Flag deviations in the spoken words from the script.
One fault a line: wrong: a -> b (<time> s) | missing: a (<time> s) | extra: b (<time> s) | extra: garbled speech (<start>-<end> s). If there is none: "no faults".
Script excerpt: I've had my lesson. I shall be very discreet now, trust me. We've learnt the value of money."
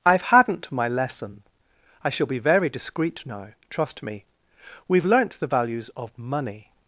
wrong: had -> hadn't (0.2 s)
wrong: value -> values (5.5 s)